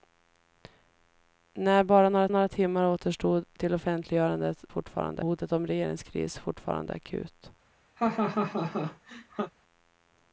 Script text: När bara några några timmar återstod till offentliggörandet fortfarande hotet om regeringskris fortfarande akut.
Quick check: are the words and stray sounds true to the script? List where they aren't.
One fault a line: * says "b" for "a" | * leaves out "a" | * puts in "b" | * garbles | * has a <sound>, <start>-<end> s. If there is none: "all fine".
* has a laugh, 8.0-9.5 s